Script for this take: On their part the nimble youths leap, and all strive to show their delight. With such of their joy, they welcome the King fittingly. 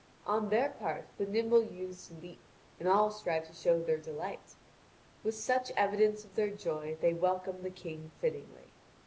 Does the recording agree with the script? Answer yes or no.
no